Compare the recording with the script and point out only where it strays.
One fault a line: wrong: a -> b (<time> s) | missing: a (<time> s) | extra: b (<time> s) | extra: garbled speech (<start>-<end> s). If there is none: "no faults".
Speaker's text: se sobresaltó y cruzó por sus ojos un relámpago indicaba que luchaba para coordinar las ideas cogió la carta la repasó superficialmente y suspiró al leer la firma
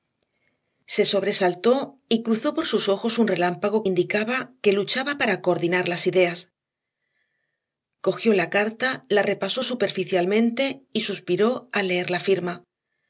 no faults